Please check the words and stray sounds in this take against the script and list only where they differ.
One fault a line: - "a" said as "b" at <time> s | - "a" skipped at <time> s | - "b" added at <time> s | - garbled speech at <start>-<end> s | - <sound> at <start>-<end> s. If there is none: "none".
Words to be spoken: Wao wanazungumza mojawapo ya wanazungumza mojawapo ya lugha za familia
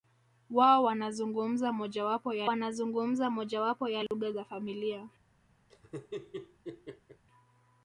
- dropout at 4.1-4.1 s
- laugh at 5.7-7.2 s